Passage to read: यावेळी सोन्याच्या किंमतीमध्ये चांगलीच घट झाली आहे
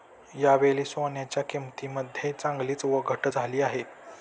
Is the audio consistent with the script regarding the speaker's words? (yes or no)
yes